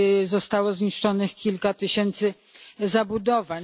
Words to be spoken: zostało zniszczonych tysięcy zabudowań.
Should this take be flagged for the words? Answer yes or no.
yes